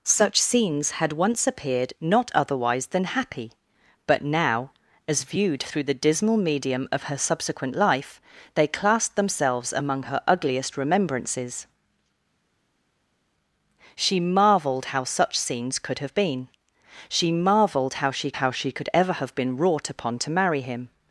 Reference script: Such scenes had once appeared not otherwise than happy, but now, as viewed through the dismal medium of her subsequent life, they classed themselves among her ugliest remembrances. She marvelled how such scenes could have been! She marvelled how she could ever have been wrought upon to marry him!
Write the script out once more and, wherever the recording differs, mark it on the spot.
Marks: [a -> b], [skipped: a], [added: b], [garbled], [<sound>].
Such scenes had once appeared not otherwise than happy, but now, as viewed through the dismal medium of her subsequent life, they classed themselves among her ugliest remembrances. She marvelled how such scenes could have been! She marvelled how she [added: how she] could ever have been wrought upon to marry him!